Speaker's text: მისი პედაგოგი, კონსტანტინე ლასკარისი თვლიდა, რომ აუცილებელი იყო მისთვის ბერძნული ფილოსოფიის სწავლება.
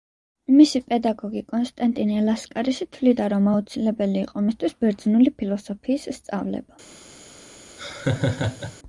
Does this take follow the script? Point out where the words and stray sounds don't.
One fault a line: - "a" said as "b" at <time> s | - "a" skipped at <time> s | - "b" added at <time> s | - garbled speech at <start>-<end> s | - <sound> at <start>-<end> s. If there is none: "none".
- laugh at 7.8-8.8 s